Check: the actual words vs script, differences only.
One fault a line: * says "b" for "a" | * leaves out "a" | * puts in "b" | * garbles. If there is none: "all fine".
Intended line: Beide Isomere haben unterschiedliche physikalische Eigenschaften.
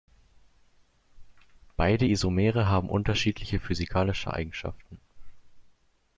all fine